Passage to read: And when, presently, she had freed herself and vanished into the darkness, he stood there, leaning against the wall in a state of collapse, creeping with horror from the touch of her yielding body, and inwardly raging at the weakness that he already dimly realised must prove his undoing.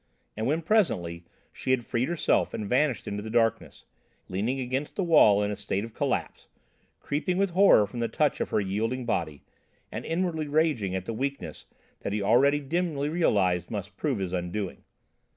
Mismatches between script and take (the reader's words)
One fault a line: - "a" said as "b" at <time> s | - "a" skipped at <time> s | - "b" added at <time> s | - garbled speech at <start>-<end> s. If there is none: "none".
- "he stood there" skipped at 3.9 s